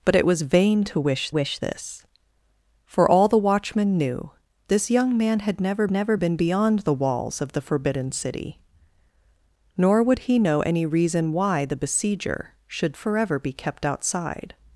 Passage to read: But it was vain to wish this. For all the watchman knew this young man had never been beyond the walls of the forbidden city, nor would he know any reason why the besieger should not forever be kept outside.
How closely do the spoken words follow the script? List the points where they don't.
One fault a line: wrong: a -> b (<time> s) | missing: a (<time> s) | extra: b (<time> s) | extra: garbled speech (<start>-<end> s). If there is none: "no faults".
extra: wish (1.3 s)
extra: never (5.9 s)
missing: not (13.0 s)